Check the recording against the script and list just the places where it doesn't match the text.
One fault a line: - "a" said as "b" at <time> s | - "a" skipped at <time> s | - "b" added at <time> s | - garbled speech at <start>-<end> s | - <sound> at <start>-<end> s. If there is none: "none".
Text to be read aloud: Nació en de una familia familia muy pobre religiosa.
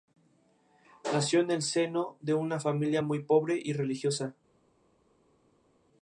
- "el seno" added at 1.5 s
- "familia" skipped at 3.0 s
- "y" added at 3.6 s